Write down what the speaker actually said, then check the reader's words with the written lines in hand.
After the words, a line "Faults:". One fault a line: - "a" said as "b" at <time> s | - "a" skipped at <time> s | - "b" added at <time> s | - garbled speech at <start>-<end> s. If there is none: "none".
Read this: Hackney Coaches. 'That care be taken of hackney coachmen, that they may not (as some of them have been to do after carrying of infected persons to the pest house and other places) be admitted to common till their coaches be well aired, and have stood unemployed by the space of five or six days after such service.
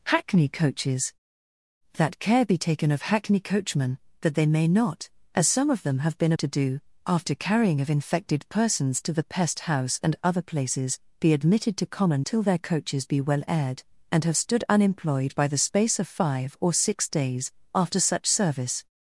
Hackney Coaches. 'That care be taken of hackney coachmen, that they may not (as some of them have been to do after carrying of infected persons to the pest house and other places) be admitted to common till their coaches be well aired, and have stood unemployed by the space of five or six days after such service.
Faults:
none